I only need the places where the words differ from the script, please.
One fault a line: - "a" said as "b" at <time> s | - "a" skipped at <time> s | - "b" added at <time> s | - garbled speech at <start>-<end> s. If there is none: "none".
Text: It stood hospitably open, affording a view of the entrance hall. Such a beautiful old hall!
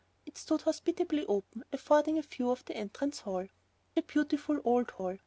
- "Such" skipped at 3.5 s